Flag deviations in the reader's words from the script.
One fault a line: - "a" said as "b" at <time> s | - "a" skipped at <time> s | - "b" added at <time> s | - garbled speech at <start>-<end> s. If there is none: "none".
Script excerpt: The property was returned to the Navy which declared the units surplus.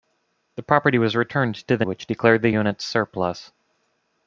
- "Navy" skipped at 1.9 s